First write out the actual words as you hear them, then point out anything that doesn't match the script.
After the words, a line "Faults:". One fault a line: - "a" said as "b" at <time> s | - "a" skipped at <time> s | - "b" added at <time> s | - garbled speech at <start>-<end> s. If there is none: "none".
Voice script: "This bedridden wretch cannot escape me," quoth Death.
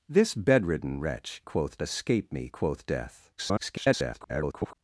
"This bedridden wretch quoth escape me," quoth Death. [garbled]
Faults:
- "cannot" said as "quoth" at 1.4 s
- garbled speech at 3.4-4.7 s